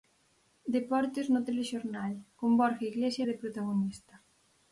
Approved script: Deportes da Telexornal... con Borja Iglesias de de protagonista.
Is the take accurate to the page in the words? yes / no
no